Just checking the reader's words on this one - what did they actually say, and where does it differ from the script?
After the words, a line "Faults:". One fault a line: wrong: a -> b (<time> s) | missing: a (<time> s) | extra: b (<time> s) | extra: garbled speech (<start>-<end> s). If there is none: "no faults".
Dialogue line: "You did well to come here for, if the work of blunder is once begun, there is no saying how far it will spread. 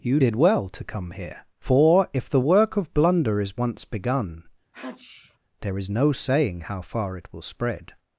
"You did well to come here for, if the work of blunder is once begun, there is no saying how far it will spread.
Faults:
no faults